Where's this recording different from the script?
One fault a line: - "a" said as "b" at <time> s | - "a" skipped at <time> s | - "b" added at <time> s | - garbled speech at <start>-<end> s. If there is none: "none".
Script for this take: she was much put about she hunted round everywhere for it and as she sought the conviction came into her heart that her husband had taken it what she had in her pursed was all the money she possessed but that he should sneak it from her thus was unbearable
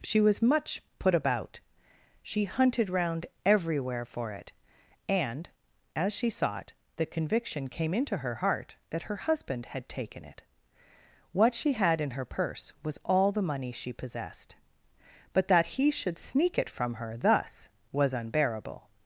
- "pursed" said as "purse" at 12.2 s